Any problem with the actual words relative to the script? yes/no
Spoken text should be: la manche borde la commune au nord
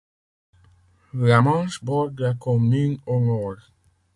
no